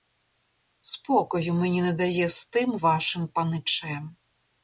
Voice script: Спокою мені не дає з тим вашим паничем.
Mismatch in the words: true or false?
false